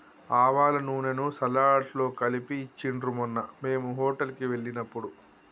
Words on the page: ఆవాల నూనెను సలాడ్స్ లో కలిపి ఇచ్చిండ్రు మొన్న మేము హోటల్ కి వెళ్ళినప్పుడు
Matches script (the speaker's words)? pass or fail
pass